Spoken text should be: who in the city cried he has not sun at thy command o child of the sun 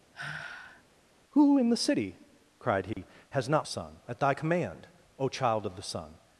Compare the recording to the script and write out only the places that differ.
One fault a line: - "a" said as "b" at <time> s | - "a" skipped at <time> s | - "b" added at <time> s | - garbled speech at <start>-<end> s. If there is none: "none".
none